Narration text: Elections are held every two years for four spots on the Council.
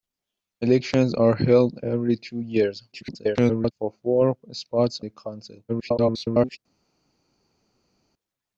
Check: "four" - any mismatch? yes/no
no